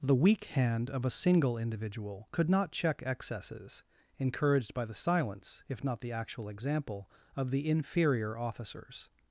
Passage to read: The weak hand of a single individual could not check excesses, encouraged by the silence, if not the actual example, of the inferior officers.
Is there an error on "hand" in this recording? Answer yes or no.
no